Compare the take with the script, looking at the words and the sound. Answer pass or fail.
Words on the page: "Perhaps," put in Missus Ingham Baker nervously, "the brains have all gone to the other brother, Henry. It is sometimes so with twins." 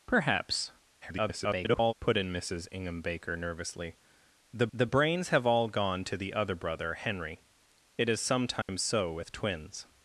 fail